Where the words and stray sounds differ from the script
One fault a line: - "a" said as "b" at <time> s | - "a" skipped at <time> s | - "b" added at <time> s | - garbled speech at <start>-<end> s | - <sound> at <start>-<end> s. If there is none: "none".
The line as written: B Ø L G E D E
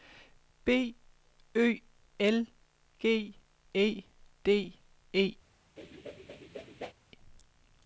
- whoosh at 5.8-6.9 s